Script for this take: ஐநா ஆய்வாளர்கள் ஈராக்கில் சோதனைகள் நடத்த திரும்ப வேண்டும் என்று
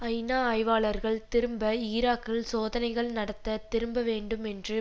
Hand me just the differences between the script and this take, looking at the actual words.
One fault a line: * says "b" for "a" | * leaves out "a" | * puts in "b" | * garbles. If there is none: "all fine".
* puts in "திரும்ப"